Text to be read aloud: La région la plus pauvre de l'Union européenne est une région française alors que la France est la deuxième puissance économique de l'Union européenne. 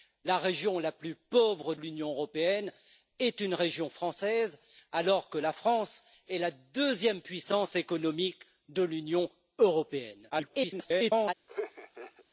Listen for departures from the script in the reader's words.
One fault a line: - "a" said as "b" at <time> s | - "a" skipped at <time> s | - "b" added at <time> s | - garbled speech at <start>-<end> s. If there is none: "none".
- "de" skipped at 1.8 s
- garbled speech at 10.3-11.3 s